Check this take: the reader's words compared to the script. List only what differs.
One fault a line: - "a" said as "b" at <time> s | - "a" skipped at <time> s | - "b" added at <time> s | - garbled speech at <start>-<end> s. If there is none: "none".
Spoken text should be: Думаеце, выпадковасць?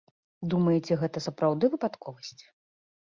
- "гэта сапраўды" added at 1.0 s